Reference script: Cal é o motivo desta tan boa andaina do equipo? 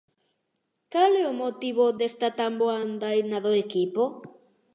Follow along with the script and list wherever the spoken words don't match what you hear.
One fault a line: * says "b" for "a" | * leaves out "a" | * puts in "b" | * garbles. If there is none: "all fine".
all fine